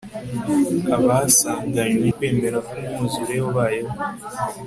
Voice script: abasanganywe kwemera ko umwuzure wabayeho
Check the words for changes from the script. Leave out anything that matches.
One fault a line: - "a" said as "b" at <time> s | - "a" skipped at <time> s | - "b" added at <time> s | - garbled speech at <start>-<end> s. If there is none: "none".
none